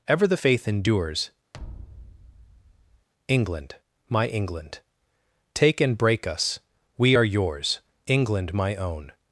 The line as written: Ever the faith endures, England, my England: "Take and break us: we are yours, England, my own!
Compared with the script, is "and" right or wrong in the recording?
right